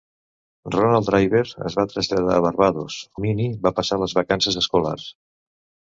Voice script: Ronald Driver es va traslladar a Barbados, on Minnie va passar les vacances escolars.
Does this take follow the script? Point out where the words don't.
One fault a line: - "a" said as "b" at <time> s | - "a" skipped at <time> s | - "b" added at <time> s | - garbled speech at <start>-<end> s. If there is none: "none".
- "on" skipped at 3.0 s